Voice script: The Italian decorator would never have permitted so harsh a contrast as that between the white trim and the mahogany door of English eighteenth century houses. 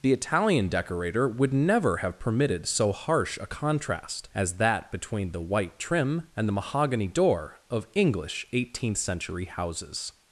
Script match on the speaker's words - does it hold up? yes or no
yes